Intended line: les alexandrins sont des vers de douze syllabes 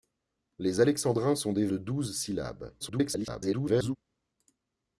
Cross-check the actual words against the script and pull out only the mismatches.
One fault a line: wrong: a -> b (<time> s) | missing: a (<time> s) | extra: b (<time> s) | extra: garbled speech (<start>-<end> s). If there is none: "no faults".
missing: vers (1.7 s)
extra: garbled speech (2.8-4.0 s)